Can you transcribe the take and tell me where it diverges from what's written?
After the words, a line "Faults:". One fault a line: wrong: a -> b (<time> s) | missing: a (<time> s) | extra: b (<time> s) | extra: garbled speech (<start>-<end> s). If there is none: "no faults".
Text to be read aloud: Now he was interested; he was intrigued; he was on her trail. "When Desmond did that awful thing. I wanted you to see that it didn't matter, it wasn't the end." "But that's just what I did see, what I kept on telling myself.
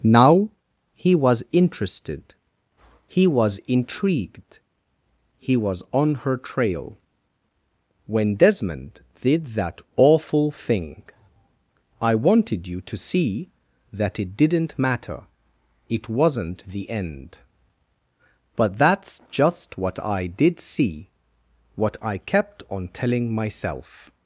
Now he was interested; he was intrigued; he was on her trail. "When Desmond did that awful thing. I wanted you to see that it didn't matter, it wasn't the end." "But that's just what I did see, what I kept on telling myself.
Faults:
no faults